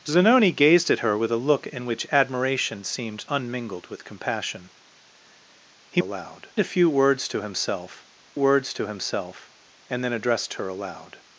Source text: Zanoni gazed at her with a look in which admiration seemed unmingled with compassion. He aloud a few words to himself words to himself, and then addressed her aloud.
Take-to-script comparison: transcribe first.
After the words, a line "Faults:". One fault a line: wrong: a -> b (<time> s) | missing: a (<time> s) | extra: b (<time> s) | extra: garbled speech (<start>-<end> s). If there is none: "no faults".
Zanoni gazed at her with a look in which admiration seemed unmingled with compassion. He aloud a few words to himself words to himself, and then addressed her aloud.
Faults:
no faults